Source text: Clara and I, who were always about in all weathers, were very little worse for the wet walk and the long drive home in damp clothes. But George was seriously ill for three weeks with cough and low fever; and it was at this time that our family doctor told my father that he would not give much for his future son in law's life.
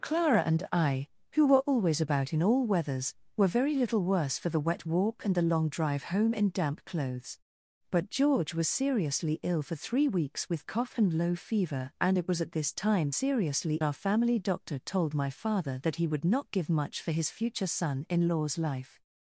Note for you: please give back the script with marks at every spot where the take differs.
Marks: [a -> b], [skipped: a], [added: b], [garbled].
Clara and I, who were always about in all weathers, were very little worse for the wet walk and the long drive home in damp clothes. But George was seriously ill for three weeks with cough and low fever; and it was at this time [that -> seriously] our family doctor told my father that he would not give much for his future son in law's life.